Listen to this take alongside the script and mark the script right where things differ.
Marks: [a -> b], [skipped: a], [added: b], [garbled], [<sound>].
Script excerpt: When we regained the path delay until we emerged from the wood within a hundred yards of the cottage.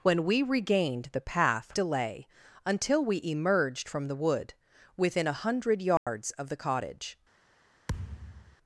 When we regained the path delay until we emerged from the wood within a hundred yards [dropout] of the cottage. [thud]